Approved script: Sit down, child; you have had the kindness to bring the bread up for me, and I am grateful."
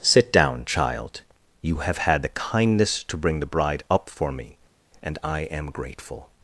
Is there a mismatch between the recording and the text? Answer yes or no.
yes